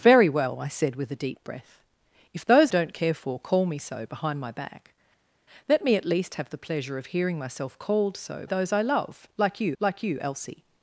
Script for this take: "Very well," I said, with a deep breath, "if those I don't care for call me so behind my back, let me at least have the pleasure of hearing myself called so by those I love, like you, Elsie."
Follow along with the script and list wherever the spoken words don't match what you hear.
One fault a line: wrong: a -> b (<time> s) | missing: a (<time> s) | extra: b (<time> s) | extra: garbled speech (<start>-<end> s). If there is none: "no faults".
missing: I (2.7 s)
missing: by (8.5 s)
extra: like you (9.8 s)